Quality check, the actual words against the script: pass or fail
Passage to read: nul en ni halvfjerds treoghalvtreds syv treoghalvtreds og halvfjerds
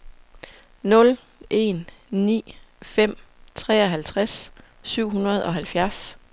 fail